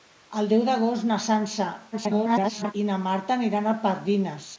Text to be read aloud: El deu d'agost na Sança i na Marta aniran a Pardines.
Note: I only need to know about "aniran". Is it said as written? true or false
true